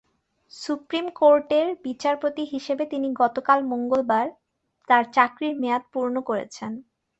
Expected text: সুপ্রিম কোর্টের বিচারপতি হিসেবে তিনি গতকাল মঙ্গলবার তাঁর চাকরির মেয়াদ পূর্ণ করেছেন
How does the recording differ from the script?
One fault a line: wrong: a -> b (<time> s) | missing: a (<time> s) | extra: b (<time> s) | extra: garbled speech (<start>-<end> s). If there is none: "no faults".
no faults